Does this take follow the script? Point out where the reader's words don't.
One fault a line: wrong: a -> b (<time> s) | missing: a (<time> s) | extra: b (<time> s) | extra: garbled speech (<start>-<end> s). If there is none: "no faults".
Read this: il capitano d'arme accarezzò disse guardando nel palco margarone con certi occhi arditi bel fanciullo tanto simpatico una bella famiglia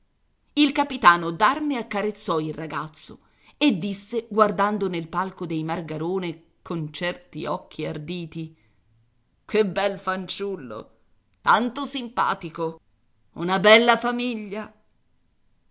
extra: il ragazzo e (2.4 s)
extra: dei (5.5 s)
extra: che (9.4 s)